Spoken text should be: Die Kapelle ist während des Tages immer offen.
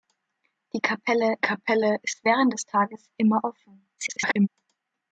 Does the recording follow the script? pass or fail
fail